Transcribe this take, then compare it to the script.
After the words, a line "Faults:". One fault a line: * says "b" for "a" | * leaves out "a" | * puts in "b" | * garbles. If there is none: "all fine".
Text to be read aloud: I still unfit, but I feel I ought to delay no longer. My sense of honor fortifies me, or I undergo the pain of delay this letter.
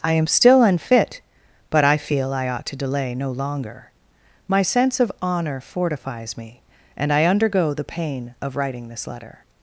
I am still unfit, but I feel I ought to delay no longer. My sense of honor fortifies me, and I undergo the pain of writing this letter.
Faults:
* puts in "am"
* says "and" for "or"
* says "writing" for "delay"